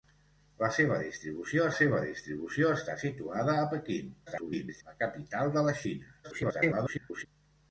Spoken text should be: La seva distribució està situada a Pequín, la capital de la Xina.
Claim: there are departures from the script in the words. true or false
true